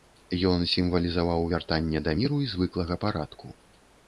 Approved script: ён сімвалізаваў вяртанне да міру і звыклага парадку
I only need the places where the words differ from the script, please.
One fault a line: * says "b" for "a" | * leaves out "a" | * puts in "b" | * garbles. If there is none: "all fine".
all fine